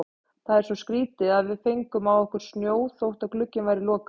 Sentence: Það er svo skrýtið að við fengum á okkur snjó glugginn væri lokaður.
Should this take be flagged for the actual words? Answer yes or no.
yes